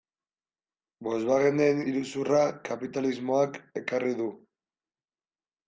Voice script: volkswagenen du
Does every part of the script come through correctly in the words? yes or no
no